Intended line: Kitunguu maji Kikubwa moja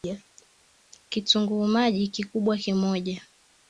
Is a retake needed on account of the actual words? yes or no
no